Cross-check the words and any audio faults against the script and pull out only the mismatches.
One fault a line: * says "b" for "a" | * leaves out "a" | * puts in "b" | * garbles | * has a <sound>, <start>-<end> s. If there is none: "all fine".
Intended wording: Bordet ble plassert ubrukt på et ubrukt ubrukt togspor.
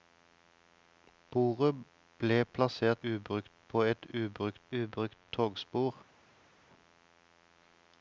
all fine